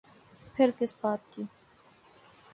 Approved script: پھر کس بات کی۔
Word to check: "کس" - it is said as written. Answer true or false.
true